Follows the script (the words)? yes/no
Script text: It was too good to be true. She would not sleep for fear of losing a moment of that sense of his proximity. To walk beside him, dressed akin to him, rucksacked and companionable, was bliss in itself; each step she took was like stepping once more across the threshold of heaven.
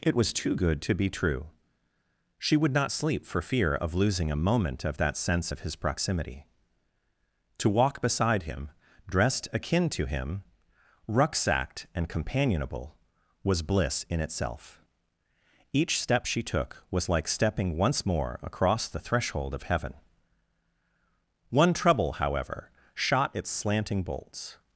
no